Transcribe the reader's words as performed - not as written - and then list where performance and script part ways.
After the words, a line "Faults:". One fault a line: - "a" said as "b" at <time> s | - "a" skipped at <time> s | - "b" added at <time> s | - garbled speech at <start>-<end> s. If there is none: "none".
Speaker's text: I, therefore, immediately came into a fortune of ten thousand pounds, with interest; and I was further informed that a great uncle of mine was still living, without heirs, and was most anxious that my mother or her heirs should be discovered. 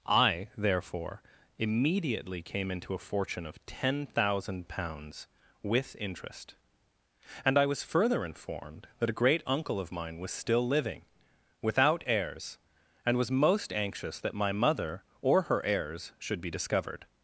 I, therefore, immediately came into a fortune of ten thousand pounds, with interest; and I was further informed that a great uncle of mine was still living, without heirs, and was most anxious that my mother or her heirs should be discovered.
Faults:
none